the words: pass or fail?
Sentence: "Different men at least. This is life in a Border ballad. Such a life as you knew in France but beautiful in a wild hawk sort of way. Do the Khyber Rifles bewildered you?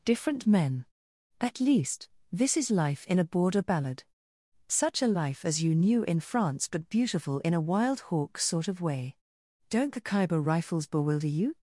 fail